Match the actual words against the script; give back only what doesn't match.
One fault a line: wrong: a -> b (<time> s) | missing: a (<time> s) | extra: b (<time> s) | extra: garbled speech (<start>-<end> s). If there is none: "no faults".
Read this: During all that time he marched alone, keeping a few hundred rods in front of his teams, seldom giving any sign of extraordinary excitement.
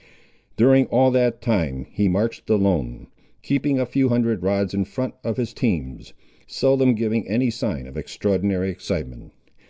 no faults